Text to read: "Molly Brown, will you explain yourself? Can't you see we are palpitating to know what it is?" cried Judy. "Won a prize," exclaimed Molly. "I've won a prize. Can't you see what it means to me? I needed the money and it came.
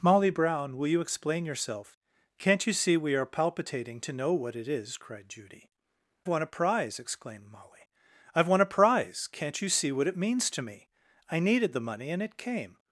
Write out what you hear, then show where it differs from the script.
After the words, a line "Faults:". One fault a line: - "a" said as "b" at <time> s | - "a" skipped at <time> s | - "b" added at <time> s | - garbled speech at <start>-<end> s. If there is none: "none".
"Molly Brown, will you explain yourself? Can't you see we are palpitating to know what it is?" cried Judy. "Won a prize," exclaimed Molly. "I've won a prize. Can't you see what it means to me? I needed the money and it came.
Faults:
none